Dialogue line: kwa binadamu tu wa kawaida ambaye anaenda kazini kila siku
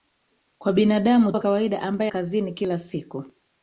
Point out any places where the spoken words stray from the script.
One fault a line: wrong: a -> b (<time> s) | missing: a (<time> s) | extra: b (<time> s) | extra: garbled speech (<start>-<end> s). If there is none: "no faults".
missing: tu (1.3 s)
missing: anaenda (2.1 s)